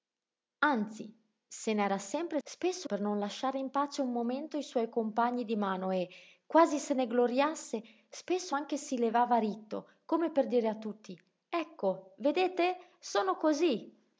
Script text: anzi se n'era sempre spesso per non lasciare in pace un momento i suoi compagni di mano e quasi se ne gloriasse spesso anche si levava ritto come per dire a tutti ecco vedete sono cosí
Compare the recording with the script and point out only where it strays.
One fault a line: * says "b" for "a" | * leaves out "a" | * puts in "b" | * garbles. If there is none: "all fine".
all fine